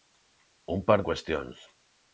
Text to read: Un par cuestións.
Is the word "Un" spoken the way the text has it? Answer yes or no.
yes